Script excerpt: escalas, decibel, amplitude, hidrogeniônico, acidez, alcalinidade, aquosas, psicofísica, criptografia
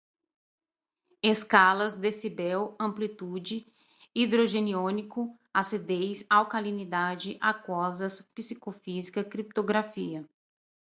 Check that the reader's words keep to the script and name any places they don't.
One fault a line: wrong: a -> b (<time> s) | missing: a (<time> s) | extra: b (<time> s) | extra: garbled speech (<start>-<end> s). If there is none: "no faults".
no faults